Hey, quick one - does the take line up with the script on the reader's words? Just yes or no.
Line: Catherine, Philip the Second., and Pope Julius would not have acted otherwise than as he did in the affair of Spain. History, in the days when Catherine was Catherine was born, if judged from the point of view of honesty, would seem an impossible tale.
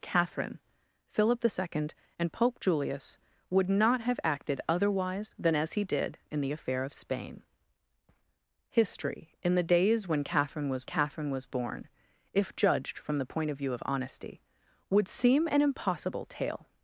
yes